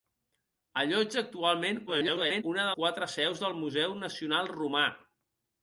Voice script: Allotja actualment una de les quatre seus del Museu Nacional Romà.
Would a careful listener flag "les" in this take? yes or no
yes